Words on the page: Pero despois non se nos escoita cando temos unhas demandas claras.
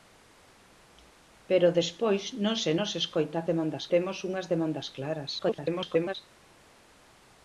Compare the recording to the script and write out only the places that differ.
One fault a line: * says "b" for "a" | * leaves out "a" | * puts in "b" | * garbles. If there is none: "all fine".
* says "demandas" for "cando"
* garbles